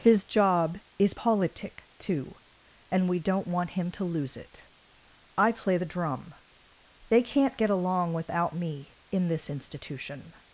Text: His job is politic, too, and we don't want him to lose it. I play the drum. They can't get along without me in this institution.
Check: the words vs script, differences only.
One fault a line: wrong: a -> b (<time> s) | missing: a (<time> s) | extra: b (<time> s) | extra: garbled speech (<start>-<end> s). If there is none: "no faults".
no faults